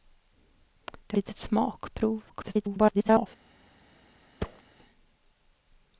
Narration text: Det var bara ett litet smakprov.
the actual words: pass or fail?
fail